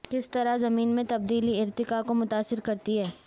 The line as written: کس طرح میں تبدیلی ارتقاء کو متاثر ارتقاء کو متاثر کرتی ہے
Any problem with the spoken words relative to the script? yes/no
yes